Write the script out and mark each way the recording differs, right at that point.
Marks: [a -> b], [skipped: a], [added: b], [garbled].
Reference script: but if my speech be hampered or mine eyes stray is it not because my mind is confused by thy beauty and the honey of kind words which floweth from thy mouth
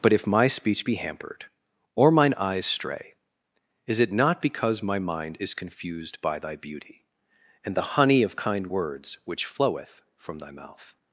but if my speech be hampered or mine eyes stray is it not because my mind is confused by thy beauty and the honey of kind words which floweth from thy mouth